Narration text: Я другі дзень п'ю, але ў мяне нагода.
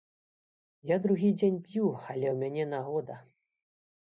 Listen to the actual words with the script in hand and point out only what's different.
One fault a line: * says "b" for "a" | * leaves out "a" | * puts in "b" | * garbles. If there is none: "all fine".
all fine